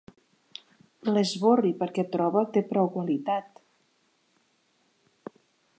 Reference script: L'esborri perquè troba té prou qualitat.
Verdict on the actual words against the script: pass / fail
pass